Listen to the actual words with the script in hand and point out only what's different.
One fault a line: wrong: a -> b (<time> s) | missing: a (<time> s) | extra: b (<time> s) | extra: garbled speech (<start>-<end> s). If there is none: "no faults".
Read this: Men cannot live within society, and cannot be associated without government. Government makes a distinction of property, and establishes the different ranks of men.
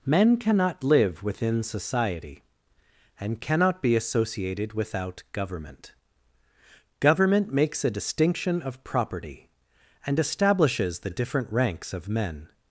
no faults